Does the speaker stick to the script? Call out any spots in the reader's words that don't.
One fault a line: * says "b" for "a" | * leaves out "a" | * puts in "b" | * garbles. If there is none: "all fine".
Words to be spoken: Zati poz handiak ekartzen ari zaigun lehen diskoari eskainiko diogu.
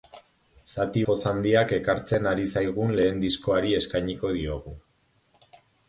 all fine